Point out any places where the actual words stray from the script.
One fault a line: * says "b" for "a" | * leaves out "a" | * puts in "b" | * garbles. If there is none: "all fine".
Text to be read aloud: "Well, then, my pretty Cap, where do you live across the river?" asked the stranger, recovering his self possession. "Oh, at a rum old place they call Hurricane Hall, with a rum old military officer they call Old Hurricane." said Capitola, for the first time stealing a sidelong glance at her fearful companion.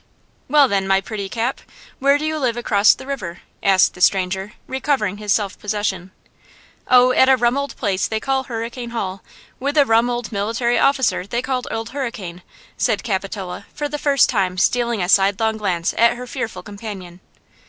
all fine